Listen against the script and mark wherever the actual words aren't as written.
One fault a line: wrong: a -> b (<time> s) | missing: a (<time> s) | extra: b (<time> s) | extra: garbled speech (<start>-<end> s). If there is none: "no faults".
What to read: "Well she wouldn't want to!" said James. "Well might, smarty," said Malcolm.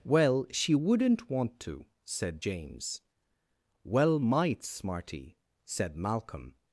no faults